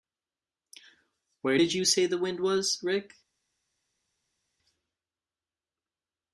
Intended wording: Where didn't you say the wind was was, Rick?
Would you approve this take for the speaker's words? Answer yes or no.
no